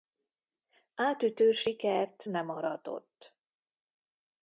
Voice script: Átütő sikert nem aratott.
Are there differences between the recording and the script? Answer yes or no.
no